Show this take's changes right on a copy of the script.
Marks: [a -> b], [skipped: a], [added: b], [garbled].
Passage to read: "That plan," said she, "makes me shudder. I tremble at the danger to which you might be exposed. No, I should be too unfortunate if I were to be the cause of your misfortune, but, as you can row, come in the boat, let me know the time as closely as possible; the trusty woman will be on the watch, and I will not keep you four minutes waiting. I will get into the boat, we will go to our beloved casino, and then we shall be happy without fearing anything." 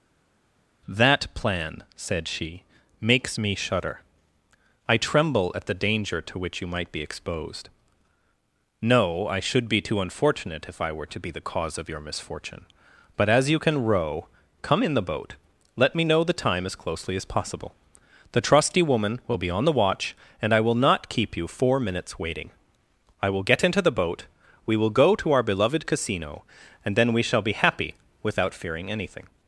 "That plan," said she, "makes me shudder. I tremble at the danger to which you might be exposed. No, I should be too unfortunate if I were to be the cause of your misfortune, but, as you can row, come in the boat, let me know the time as closely as possible; the trusty woman will be on the watch, and I will not keep you four minutes waiting. I will get into the boat, we will go to our beloved casino, and then we shall be happy without fearing anything."